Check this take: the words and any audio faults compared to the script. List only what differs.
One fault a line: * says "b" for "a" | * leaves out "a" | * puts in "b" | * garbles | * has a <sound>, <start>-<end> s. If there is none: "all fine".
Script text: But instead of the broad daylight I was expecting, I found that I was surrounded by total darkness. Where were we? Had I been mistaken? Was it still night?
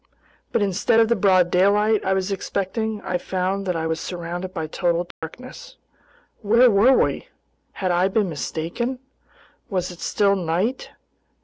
* has a dropout, 5.1-5.2 s